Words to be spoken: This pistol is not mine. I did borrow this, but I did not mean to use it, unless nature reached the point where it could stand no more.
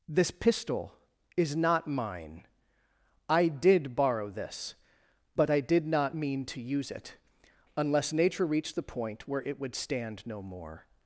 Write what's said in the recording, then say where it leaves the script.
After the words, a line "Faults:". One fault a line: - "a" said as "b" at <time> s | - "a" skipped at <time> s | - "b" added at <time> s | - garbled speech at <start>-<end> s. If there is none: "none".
This pistol is not mine. I did borrow this, but I did not mean to use it, unless nature reached the point where it would stand no more.
Faults:
- "could" said as "would" at 9.6 s